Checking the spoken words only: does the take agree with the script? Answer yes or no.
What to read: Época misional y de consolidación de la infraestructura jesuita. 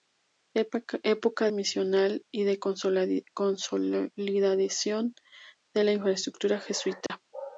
yes